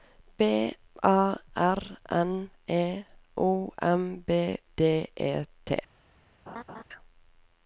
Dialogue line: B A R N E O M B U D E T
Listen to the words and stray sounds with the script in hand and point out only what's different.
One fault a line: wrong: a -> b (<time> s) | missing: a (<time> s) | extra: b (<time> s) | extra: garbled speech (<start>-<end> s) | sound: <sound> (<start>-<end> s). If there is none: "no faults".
missing: U (4.6 s)
sound: laugh (6.5-6.8 s)